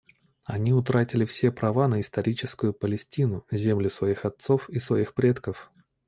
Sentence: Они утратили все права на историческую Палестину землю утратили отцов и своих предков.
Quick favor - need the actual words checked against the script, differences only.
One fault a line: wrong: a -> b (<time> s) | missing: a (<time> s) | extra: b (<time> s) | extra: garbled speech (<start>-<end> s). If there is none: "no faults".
wrong: утратили -> своих (3.9 s)